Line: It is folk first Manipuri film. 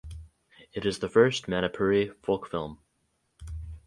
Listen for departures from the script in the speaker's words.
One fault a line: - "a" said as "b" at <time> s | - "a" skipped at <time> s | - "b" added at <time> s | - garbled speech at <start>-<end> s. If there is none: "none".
- "folk" said as "the" at 1.0 s
- "folk" added at 2.2 s